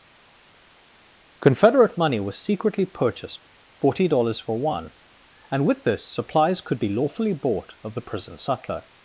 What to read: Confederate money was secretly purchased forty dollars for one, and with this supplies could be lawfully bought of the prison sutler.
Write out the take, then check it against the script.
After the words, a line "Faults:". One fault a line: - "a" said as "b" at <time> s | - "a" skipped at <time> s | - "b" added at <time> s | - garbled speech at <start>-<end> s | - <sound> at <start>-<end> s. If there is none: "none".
Confederate money was secretly purchased forty dollars for one, and with this supplies could be lawfully bought of the prison sutler.
Faults:
none